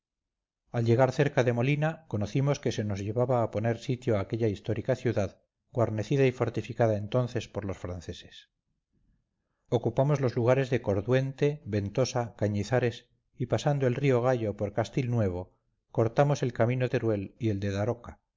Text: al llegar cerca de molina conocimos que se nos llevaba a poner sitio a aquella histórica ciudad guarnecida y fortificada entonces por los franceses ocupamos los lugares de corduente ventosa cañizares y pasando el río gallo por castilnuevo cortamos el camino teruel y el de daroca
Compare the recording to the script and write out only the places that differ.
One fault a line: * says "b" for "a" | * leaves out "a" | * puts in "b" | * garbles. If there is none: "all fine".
all fine